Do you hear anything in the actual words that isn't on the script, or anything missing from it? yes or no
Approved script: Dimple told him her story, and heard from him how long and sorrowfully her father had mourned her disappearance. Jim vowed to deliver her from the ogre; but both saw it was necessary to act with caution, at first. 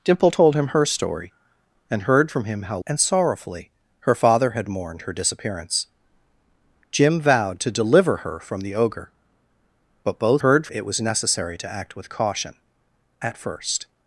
yes